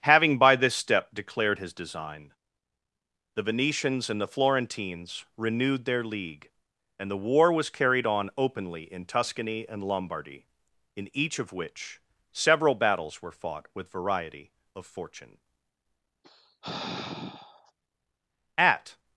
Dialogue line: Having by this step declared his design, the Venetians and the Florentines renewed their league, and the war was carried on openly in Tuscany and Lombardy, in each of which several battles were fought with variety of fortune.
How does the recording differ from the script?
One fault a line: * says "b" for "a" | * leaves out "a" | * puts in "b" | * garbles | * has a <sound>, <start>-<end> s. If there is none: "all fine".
* has a sigh, 16.2-17.7 s
* puts in "At"